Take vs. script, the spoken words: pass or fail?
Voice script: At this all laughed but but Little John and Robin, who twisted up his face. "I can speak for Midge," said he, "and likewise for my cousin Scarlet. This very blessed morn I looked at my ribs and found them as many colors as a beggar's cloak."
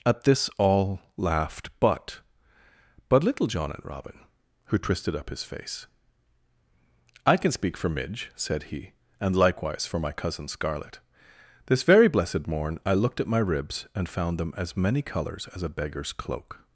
pass